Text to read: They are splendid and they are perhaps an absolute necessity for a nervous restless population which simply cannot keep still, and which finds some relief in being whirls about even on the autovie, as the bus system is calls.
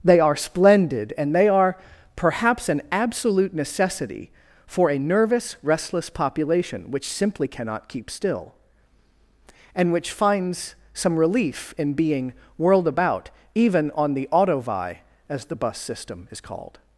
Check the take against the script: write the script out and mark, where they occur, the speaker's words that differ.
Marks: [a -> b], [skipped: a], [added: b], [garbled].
They are splendid and they are perhaps an absolute necessity for a nervous restless population which simply cannot keep still, and which finds some relief in being [whirls -> whirled] about even on the autovie, as the bus system is [calls. -> called]